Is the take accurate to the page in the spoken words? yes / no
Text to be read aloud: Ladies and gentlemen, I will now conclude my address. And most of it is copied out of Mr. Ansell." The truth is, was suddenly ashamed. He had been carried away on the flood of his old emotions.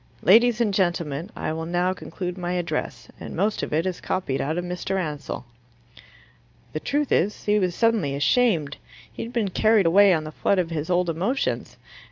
no